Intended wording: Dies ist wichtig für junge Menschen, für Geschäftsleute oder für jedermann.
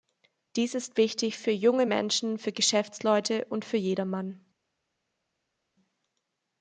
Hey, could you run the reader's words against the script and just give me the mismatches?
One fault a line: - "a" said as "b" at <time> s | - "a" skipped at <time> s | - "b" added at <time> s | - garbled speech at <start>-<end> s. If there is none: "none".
- "oder" said as "und" at 3.5 s